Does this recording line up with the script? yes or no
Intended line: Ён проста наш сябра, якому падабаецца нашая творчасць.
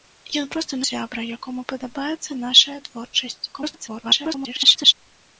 no